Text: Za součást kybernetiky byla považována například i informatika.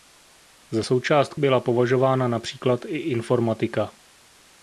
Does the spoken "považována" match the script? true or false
true